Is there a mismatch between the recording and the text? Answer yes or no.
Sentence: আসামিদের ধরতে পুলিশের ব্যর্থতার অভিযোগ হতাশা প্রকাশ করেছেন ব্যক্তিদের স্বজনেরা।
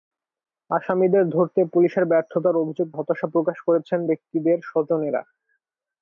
no